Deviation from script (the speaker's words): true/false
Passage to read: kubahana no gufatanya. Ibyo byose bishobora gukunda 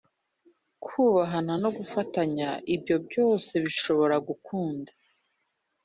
false